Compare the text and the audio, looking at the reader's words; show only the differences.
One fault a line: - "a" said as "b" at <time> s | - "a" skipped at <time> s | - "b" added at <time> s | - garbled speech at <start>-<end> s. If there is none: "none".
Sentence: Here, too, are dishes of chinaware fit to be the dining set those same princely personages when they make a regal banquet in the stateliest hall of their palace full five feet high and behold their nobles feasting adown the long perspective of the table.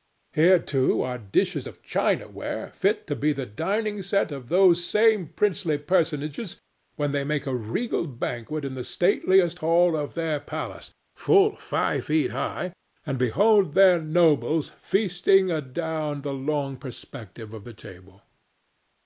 - "of" added at 4.3 s